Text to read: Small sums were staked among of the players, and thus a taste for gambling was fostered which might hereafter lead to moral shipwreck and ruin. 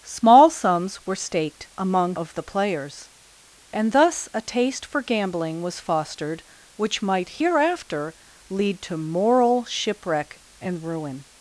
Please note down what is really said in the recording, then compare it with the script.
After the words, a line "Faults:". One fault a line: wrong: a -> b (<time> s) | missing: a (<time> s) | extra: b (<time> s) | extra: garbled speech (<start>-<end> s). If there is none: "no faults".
Small sums were staked among of the players, and thus a taste for gambling was fostered which might hereafter lead to moral shipwreck and ruin.
Faults:
no faults